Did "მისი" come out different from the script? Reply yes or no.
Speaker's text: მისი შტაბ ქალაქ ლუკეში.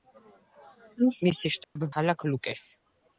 no